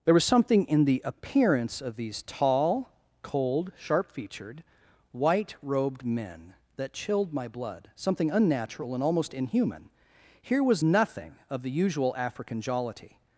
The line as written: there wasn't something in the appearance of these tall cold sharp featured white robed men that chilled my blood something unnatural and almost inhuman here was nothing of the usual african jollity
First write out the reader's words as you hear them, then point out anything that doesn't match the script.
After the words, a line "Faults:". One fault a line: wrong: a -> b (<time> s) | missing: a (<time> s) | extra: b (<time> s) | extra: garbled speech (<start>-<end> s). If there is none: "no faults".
there was something in the appearance of these tall cold sharp featured white robed men that chilled my blood something unnatural and almost inhuman here was nothing of the usual african jollity
Faults:
wrong: wasn't -> was (0.1 s)